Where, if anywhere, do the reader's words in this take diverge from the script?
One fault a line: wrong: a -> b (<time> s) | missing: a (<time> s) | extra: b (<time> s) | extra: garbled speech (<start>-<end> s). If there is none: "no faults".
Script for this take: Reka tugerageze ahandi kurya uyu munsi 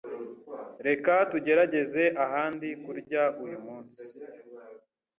no faults